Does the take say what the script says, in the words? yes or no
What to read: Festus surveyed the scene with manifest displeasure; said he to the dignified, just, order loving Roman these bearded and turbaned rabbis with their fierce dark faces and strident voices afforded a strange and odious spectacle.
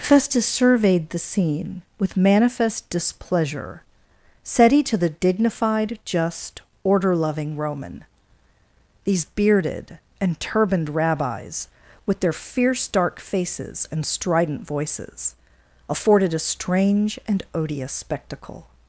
yes